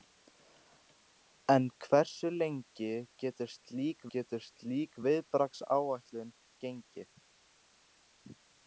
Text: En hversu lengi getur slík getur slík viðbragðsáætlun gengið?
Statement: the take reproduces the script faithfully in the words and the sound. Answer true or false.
true